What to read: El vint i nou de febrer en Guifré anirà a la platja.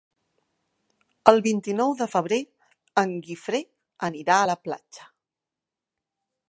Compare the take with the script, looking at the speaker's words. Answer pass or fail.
pass